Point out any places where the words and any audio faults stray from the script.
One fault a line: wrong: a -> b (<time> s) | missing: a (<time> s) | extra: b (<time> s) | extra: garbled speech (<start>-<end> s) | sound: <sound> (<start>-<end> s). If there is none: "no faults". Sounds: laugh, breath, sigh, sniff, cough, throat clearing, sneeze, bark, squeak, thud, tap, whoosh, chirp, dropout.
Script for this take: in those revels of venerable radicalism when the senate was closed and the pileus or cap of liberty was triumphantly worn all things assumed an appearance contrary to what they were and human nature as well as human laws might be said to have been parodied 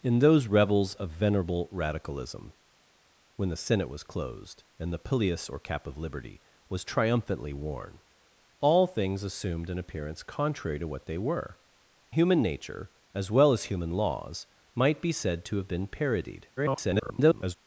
missing: and (11.6 s)
extra: garbled speech (16.6-17.6 s)